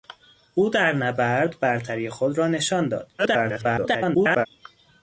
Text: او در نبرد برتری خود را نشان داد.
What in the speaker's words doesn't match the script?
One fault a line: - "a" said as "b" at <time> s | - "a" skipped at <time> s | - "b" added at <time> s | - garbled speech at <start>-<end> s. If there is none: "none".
- garbled speech at 3.2-4.5 s